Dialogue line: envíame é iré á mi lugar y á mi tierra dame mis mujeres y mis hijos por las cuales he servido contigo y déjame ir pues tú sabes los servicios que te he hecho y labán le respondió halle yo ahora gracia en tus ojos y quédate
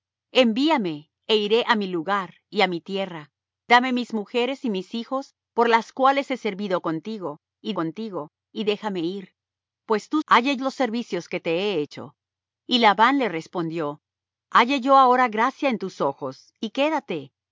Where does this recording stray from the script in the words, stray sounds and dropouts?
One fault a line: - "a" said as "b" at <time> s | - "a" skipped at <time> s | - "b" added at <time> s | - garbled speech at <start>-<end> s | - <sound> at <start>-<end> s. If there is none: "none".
- "contigo y" added at 7.7 s
- "sabes" said as "halle" at 10.3 s